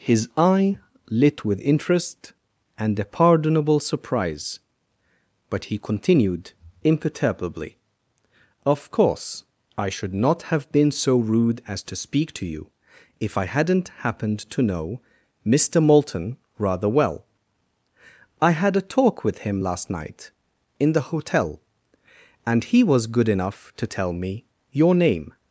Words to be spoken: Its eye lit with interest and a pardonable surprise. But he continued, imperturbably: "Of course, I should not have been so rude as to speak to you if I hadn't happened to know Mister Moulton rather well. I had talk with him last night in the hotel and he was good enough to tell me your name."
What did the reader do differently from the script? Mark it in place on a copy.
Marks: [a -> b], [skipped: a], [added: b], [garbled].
[Its -> His] eye lit with interest and a pardonable surprise. But he continued, imperturbably: "Of course, I should not have been so rude as to speak to you if I hadn't happened to know Mister Moulton rather well. I had [added: a] talk with him last night in the hotel and he was good enough to tell me your name."